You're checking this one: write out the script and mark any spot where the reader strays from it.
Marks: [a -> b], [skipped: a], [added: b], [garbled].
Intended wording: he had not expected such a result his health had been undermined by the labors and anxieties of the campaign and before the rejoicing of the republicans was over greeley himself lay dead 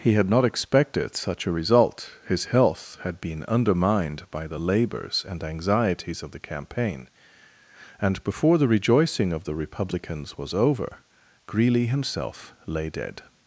he had not expected such a result his health had been undermined by the labors and anxieties of the campaign and before the rejoicing of the republicans was over greeley himself lay dead